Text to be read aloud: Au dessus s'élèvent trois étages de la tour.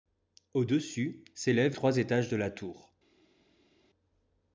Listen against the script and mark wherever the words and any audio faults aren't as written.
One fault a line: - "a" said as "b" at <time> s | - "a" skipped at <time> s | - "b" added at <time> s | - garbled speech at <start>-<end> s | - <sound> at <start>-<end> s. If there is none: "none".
none